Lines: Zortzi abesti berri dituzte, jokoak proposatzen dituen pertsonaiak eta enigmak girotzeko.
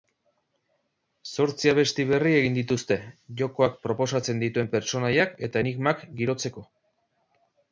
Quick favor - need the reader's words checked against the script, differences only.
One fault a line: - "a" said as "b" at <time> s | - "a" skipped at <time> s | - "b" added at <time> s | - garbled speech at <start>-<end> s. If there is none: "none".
- "egin" added at 2.4 s